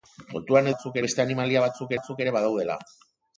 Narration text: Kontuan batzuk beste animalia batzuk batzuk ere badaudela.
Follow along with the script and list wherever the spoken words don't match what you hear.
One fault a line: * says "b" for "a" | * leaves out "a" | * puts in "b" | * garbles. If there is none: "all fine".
all fine